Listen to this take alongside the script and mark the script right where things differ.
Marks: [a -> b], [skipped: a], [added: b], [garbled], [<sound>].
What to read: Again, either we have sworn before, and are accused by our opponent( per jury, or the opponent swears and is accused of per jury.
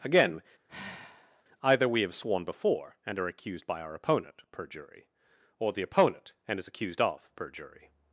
Again, [sigh] either we have sworn before, and are accused by our opponent( per jury, or the opponent [skipped: swears] and is accused of per jury.